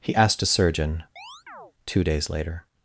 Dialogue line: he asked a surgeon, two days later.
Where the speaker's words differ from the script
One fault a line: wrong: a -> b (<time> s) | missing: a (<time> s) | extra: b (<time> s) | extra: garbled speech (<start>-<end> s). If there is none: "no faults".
no faults